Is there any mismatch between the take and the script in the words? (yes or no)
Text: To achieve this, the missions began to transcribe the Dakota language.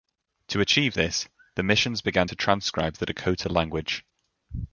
no